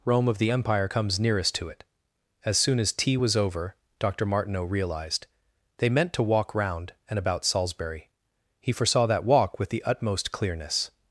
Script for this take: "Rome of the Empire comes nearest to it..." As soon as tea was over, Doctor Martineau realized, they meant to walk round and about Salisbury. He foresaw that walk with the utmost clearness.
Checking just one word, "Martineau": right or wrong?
right